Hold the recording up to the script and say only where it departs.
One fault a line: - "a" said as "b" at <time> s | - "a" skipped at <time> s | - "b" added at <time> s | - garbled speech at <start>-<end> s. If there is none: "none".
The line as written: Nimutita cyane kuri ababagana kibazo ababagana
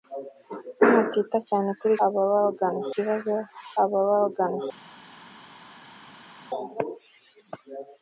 none